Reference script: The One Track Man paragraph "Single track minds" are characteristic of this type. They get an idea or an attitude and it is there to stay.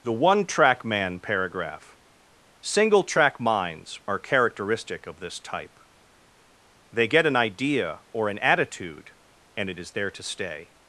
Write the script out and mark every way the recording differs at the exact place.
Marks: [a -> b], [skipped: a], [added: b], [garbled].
The One Track Man paragraph "Single track minds" are characteristic of this type. They get an idea or an attitude and it is there to stay.